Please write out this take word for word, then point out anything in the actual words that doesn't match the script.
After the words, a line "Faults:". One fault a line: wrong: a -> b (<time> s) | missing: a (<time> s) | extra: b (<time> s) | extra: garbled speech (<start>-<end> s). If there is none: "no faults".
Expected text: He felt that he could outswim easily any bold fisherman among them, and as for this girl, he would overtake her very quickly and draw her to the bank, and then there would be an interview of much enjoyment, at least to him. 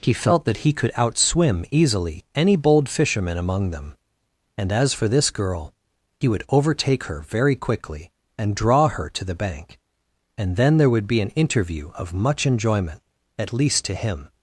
He felt that he could outswim easily any bold fisherman among them, and as for this girl, he would overtake her very quickly and draw her to the bank, and then there would be an interview of much enjoyment, at least to him.
Faults:
no faults